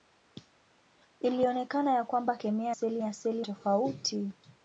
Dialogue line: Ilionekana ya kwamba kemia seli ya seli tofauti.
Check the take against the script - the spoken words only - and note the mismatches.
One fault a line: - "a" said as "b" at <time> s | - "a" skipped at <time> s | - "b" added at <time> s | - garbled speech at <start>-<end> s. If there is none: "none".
none